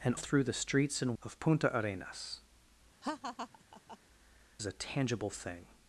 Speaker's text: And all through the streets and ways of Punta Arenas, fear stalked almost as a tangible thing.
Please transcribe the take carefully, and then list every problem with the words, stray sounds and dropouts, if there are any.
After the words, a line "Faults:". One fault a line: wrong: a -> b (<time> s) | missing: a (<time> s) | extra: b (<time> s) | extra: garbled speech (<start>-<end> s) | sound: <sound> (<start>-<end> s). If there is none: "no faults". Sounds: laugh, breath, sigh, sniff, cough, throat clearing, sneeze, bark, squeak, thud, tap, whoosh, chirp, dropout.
And through the streets and of Punta Arenas, as a tangible thing.
Faults:
missing: all (0.1 s)
missing: ways (1.2 s)
missing: fear stalked almost (2.4 s)
sound: laugh (3.0-4.0 s)